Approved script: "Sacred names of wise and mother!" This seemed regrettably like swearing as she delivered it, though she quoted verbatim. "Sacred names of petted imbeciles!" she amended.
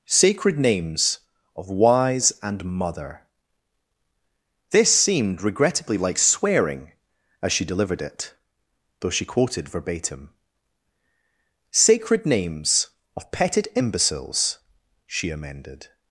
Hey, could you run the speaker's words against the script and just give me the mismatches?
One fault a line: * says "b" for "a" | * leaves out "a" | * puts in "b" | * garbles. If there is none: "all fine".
all fine